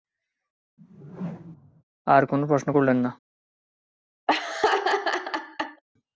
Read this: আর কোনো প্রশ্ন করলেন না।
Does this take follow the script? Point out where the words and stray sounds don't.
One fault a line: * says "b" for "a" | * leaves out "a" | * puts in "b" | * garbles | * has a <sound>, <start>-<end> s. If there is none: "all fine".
* has a whoosh, 0.8-1.8 s
* has a laugh, 4.3-5.8 s